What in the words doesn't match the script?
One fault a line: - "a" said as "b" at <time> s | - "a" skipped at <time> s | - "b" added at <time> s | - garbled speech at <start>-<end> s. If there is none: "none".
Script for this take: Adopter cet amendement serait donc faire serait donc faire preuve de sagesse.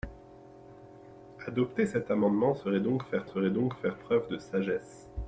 none